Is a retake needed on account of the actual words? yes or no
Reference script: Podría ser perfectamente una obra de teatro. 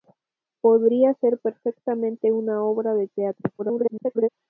yes